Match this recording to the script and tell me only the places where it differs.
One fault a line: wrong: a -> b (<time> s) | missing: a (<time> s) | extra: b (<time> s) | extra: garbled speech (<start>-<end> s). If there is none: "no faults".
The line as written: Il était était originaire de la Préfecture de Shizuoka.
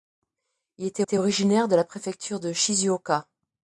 no faults